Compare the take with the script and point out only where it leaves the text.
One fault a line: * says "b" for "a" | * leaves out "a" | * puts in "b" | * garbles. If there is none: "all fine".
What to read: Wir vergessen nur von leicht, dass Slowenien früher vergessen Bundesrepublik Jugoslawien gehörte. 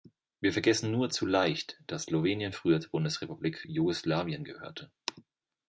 * says "zu" for "von"
* says "zur" for "vergessen"